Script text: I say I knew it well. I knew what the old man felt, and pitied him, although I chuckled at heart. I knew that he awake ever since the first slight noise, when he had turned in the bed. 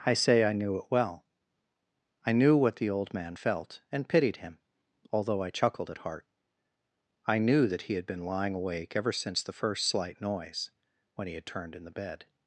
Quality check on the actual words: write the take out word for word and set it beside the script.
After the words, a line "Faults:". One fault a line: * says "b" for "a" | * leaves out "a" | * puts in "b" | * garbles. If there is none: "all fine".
I say I knew it well. I knew what the old man felt, and pitied him, although I chuckled at heart. I knew that he had been lying awake ever since the first slight noise, when he had turned in the bed.
Faults:
* puts in "had been lying"